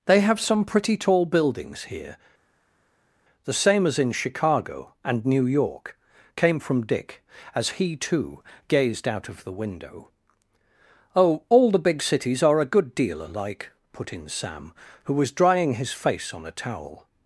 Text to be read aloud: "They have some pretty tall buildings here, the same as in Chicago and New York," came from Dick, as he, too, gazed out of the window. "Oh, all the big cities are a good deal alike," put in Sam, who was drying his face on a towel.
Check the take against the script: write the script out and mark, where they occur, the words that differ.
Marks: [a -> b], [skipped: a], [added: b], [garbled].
"They have some pretty tall buildings here, the same as in Chicago and New York," came from Dick, as he, too, gazed out of the window. "Oh, all the big cities are a good deal alike," put in Sam, who was drying his face on a towel.